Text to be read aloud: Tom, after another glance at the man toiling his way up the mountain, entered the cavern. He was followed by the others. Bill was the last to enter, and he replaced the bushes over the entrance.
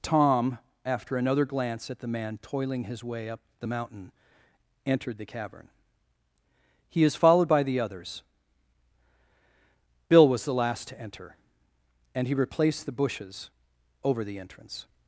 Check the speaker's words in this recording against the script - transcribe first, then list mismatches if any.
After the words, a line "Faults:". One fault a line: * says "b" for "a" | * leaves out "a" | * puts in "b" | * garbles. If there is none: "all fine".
Tom, after another glance at the man toiling his way up the mountain, entered the cavern. He is followed by the others. Bill was the last to enter, and he replaced the bushes over the entrance.
Faults:
* says "is" for "was"